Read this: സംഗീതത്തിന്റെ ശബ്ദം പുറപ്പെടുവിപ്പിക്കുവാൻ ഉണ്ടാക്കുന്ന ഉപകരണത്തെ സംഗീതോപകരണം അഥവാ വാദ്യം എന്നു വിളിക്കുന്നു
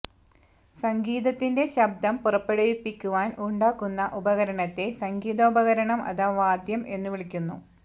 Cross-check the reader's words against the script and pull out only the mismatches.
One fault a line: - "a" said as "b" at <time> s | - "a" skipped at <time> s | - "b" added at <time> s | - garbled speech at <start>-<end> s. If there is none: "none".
none